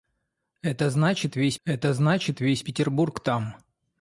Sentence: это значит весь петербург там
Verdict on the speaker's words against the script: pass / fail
fail